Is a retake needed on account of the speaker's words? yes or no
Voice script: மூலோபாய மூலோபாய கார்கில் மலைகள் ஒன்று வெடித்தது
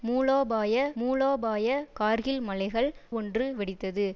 no